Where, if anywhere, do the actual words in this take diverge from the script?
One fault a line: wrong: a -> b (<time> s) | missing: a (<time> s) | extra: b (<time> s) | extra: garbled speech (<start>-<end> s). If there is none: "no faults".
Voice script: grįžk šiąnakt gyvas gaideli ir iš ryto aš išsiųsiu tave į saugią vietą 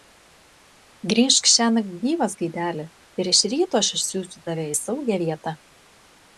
no faults